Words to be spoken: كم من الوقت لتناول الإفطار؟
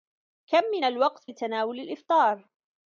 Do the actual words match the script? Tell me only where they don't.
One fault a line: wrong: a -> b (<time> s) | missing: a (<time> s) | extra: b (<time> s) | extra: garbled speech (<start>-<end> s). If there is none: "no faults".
no faults